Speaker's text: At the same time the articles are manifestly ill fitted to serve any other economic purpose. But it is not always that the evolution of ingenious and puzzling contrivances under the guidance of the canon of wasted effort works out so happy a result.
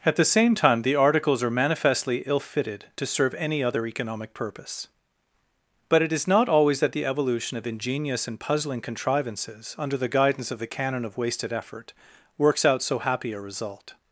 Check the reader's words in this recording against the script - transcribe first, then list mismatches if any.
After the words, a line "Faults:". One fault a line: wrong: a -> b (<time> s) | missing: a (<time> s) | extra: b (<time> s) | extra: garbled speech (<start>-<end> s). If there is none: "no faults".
At the same time the articles are manifestly ill fitted to serve any other economic purpose. But it is not always that the evolution of ingenious and puzzling contrivances under the guidance of the canon of wasted effort works out so happy a result.
Faults:
no faults